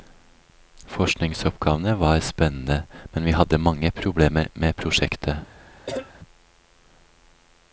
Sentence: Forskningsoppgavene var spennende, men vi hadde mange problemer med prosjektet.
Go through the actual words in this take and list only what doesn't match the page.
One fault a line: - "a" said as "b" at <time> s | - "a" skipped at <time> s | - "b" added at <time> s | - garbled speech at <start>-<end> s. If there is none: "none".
none